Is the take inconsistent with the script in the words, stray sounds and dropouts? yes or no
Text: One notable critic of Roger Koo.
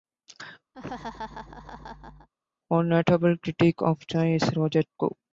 yes